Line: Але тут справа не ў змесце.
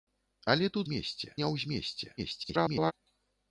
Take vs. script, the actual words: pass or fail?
fail